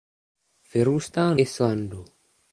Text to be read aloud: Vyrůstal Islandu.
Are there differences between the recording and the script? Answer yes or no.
no